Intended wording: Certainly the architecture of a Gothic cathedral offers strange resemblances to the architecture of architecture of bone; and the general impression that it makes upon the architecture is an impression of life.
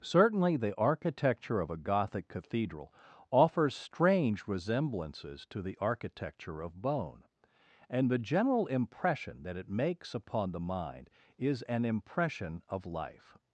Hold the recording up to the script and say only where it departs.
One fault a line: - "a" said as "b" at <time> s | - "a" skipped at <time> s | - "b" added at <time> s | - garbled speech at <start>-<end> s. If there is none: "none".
- "architecture of" skipped at 6.8 s
- "architecture" said as "mind" at 10.6 s